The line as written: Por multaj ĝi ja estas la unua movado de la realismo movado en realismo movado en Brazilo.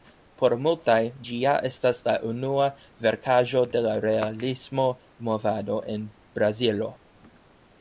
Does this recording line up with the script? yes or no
no